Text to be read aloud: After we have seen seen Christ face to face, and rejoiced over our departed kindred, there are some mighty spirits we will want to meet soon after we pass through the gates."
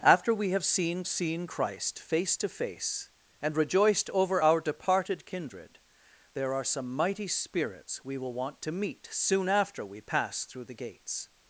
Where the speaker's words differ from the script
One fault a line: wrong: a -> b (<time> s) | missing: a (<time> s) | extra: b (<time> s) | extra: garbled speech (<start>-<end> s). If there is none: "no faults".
no faults